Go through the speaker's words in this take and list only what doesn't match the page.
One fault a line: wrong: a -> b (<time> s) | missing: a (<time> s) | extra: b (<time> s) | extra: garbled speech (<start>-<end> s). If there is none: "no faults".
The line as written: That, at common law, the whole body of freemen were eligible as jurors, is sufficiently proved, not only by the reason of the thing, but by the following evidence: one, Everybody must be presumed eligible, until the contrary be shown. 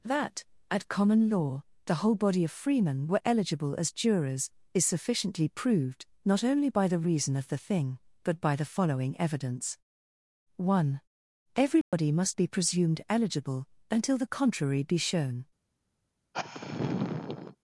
no faults